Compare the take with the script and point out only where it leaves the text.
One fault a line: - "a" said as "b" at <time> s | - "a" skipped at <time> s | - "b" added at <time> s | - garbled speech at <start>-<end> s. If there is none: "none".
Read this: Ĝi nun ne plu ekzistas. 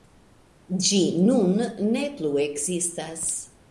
none